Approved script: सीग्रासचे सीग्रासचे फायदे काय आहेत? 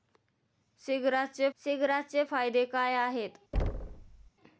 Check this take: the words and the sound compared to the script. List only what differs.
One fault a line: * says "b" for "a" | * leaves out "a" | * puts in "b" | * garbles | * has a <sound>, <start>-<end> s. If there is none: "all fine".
* has a thud, 3.5-4.3 s